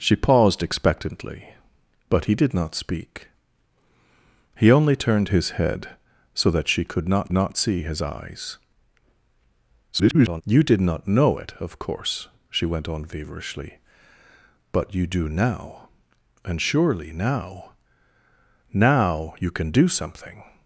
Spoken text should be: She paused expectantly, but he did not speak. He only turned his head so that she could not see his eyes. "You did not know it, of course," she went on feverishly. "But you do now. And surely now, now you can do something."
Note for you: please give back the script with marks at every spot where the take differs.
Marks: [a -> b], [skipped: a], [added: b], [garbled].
She paused expectantly, but he did not speak. He only turned his head so that she could not [added: not] see his eyes. [garbled] "You did not know it, of course," she went on feverishly. "But you do now. And surely now, now you can do something."